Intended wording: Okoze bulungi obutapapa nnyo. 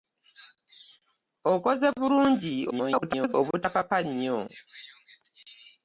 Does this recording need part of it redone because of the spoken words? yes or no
yes